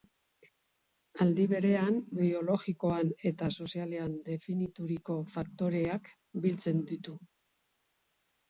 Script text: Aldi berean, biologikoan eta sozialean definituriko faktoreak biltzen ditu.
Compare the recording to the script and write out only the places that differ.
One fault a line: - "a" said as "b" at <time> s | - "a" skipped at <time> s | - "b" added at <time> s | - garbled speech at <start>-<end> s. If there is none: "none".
none